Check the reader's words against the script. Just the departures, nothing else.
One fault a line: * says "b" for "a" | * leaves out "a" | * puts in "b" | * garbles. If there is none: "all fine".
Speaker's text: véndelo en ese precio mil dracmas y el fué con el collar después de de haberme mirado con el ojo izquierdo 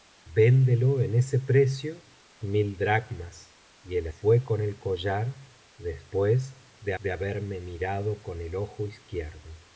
all fine